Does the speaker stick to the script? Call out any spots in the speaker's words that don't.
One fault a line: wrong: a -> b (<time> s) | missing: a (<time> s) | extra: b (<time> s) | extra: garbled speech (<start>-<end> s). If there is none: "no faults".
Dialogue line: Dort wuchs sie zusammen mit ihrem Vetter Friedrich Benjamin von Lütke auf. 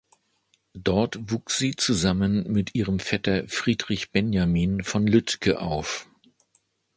no faults